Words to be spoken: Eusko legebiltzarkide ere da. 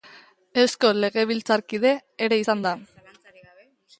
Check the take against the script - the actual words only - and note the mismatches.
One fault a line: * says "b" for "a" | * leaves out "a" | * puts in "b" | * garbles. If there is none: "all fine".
* puts in "izan"